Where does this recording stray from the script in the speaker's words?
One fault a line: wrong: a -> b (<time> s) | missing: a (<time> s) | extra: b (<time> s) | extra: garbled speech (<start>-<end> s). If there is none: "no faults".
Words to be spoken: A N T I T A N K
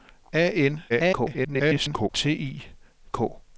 extra: garbled speech (0.9-2.1 s)
missing: T A N (2.7 s)